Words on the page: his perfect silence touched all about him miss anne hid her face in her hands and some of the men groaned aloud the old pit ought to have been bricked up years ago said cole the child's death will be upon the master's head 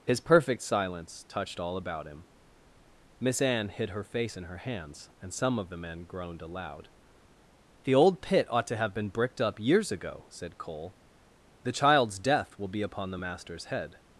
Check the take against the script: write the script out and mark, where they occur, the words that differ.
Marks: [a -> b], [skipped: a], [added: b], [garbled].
his perfect silence touched all about him miss anne hid her face in her hands and some of the men groaned aloud the old pit ought to have been bricked up years ago said cole the child's death will be upon the master's head